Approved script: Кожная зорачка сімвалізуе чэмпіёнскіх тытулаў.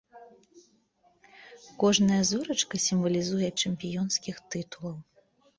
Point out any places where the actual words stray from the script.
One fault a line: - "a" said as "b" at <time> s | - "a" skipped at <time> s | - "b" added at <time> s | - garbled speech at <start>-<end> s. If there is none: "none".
none